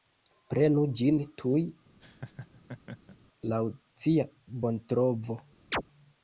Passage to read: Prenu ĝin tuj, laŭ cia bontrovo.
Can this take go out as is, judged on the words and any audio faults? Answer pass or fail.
fail